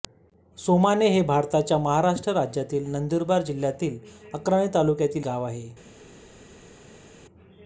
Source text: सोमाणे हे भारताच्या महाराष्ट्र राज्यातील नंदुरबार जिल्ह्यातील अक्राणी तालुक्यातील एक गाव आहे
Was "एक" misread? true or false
true